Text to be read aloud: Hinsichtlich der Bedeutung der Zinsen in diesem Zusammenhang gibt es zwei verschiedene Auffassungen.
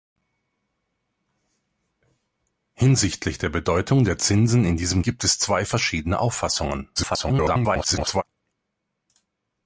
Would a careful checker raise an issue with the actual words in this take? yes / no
yes